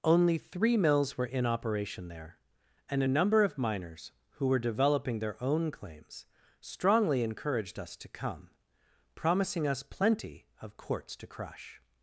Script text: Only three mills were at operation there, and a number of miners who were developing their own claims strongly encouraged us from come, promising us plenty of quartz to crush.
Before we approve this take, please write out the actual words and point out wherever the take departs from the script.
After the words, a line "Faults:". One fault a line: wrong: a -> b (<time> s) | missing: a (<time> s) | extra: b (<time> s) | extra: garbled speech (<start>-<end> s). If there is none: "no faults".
Only three mills were in operation there, and a number of miners who were developing their own claims strongly encouraged us to come, promising us plenty of quartz to crush.
Faults:
wrong: at -> in (1.2 s)
wrong: from -> to (8.0 s)